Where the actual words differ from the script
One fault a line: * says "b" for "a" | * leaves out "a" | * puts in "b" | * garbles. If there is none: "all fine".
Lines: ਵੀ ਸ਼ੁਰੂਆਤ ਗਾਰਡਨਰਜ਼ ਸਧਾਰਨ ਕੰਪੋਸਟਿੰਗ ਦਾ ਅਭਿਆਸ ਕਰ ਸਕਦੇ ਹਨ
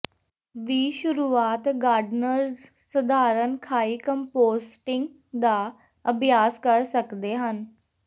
* puts in "ਖਾਈ"